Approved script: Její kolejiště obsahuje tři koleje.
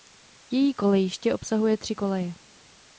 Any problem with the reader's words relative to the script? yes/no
no